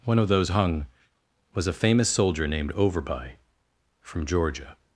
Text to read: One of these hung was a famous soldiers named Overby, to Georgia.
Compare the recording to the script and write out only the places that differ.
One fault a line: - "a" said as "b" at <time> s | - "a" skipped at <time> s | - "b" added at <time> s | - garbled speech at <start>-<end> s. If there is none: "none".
- "these" said as "those" at 0.3 s
- "soldiers" said as "soldier" at 2.1 s
- "to" said as "from" at 4.0 s